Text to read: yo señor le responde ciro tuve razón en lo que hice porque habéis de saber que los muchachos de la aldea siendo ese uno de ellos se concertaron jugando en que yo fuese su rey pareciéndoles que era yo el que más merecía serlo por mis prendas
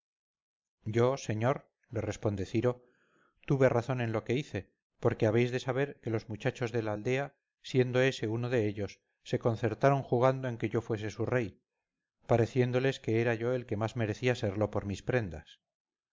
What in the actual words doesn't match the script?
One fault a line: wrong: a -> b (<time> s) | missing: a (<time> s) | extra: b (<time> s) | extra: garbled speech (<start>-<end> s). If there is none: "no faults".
no faults